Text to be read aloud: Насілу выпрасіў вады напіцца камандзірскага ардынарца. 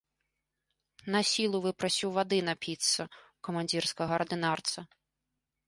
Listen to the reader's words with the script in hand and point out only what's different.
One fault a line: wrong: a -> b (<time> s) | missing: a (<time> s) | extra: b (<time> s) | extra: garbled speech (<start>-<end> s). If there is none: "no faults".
extra: ў (3.0 s)